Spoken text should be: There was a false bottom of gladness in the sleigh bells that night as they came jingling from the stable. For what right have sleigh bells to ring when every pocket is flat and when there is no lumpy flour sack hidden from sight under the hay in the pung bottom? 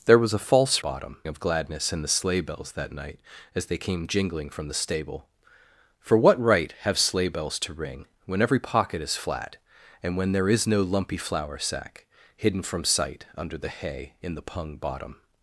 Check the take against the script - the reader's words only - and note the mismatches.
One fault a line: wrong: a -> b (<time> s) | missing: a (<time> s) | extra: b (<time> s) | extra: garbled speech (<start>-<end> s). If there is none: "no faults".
no faults